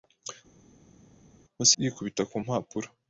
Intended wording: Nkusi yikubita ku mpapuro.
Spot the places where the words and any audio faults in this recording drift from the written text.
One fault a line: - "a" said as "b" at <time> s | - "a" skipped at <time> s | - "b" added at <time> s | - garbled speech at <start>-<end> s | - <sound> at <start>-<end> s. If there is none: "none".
none